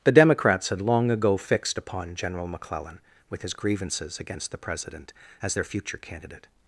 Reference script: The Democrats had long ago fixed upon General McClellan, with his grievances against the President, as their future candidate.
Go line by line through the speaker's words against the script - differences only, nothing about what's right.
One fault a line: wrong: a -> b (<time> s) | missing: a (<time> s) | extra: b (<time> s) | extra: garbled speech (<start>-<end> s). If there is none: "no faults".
no faults